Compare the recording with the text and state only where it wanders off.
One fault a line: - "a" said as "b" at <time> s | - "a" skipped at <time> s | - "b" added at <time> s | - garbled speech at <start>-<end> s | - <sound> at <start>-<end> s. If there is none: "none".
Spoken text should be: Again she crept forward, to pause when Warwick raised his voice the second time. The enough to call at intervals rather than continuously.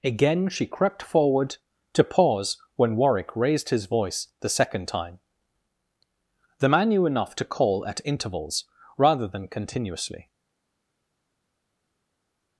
- "man knew" added at 6.7 s